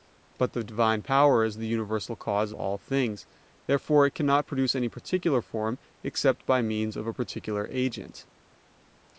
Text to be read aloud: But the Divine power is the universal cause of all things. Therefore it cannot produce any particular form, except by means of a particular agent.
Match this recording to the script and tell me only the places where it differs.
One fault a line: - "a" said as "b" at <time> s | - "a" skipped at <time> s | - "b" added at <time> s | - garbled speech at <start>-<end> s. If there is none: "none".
- "of" skipped at 2.5 s